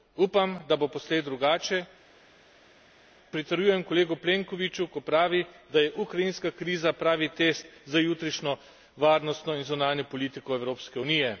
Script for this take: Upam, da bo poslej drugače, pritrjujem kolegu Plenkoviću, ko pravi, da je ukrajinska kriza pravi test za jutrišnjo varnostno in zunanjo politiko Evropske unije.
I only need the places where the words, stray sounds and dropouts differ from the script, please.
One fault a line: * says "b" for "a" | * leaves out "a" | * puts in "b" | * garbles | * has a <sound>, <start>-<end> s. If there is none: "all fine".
all fine